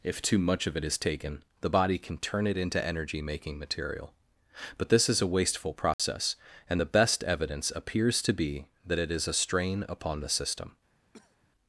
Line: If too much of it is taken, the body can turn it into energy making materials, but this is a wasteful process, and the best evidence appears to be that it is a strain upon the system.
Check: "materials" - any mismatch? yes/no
yes